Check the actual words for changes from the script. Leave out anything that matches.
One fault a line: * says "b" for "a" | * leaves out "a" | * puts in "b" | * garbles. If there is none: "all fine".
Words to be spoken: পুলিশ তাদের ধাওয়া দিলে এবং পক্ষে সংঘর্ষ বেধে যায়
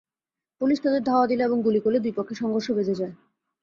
* puts in "গুলি করলে দুই"